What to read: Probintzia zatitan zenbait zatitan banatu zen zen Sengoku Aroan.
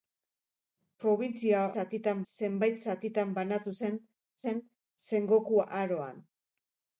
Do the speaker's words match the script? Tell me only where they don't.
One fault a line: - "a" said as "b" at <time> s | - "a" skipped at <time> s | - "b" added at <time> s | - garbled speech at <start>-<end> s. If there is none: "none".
none